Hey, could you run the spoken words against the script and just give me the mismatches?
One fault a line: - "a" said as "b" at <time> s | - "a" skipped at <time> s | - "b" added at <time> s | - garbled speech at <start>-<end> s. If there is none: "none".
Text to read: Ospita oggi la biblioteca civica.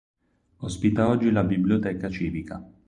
none